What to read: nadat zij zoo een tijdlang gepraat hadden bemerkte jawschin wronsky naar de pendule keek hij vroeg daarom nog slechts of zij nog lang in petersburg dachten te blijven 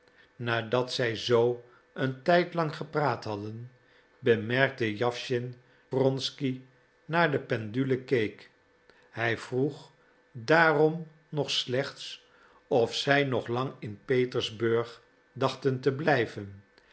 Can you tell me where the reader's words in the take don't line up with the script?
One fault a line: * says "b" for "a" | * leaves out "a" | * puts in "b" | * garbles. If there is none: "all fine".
all fine